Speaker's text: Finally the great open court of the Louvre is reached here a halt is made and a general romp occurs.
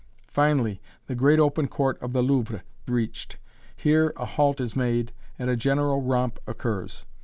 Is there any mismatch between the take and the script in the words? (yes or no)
yes